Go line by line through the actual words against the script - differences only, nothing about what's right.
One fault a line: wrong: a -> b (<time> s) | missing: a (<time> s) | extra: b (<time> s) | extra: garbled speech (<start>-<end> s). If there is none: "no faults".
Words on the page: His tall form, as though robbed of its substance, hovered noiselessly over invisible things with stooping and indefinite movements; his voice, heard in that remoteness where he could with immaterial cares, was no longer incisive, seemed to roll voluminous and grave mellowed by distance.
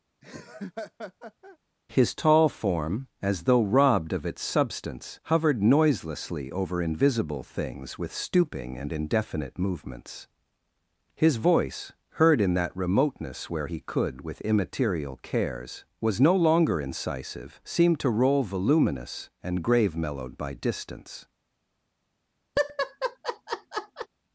no faults